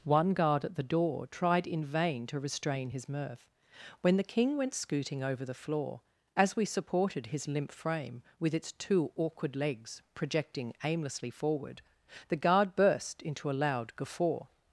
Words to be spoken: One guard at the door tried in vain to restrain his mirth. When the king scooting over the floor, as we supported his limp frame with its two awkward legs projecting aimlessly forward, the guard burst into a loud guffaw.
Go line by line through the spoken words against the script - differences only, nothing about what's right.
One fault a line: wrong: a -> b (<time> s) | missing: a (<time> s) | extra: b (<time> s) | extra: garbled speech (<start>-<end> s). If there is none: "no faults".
extra: went (4.6 s)